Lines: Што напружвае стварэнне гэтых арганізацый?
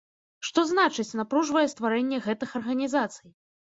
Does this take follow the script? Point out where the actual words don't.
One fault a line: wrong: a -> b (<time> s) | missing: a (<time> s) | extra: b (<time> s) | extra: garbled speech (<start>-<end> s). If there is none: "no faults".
extra: значыць (0.7 s)